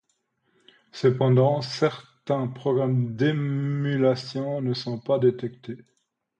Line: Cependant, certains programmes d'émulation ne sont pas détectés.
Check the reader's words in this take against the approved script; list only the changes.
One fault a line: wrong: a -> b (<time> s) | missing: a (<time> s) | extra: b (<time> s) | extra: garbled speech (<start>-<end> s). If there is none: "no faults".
no faults